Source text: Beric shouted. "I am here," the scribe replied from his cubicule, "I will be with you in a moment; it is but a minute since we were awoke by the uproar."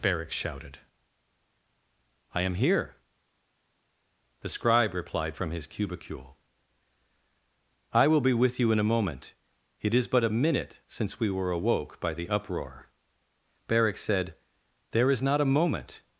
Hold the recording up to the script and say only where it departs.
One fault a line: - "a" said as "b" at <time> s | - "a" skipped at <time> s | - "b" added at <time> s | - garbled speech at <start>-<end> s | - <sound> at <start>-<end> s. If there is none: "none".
- "Beric said there is not a moment" added at 13.7 s